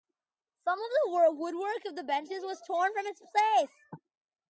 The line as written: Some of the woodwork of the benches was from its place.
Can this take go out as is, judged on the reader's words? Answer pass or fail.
fail